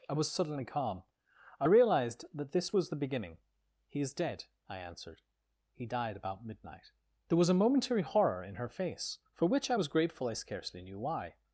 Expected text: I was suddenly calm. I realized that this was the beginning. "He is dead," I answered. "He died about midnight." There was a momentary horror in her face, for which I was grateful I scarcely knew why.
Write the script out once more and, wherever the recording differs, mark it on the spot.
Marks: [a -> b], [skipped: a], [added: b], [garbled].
I was suddenly calm. I realized that this was the beginning. "He is dead," I answered. "He died about midnight." There was a momentary horror in her face, for which I was grateful I scarcely knew why.